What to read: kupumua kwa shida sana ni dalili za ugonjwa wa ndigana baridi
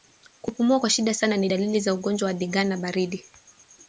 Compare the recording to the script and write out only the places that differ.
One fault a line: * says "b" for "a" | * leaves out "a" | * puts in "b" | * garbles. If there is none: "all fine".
all fine